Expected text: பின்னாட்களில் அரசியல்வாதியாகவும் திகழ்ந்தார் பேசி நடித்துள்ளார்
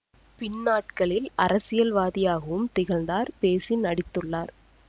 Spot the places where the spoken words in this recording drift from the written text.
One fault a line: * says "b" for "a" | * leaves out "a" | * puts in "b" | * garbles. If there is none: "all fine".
all fine